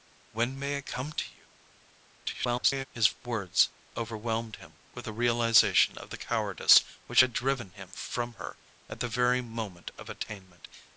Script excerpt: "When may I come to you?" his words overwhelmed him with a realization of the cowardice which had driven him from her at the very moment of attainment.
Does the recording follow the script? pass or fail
fail